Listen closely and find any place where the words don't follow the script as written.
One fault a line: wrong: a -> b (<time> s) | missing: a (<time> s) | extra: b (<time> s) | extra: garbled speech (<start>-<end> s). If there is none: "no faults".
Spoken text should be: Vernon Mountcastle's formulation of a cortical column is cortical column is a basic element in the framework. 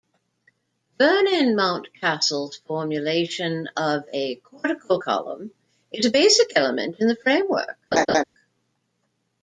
missing: cortical column is (6.1 s)